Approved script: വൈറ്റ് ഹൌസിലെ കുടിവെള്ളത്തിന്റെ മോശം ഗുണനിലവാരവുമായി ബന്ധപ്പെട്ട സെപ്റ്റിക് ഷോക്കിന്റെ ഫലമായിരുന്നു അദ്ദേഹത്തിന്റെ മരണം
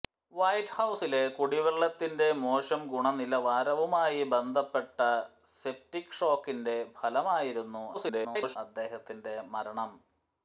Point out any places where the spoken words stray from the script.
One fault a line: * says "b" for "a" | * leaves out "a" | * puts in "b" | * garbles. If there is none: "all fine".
* garbles